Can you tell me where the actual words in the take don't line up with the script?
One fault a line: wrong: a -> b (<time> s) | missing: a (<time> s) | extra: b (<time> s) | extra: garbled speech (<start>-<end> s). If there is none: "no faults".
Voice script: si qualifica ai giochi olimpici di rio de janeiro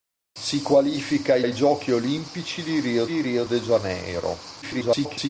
extra: ai (1.4 s)
extra: di rio (3.0 s)
extra: garbled speech (4.6-5.3 s)